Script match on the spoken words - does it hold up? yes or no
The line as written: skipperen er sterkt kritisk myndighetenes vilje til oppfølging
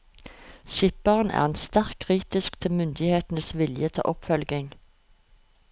no